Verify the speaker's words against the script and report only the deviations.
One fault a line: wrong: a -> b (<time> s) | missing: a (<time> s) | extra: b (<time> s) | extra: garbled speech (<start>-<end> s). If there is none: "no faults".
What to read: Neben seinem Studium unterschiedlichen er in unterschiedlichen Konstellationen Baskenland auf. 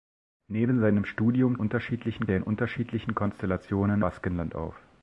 no faults